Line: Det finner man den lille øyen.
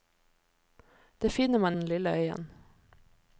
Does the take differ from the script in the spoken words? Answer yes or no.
no